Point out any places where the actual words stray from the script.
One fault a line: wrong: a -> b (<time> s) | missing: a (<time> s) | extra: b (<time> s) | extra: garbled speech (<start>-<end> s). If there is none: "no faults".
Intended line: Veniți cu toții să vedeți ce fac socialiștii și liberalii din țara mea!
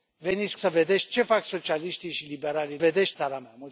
missing: cu toții (0.6 s)
wrong: din -> vedeți (2.8 s)